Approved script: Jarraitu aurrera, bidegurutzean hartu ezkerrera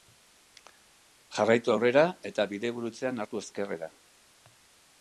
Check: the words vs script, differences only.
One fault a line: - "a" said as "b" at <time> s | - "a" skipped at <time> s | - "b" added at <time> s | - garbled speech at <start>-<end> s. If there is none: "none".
- "eta" added at 2.3 s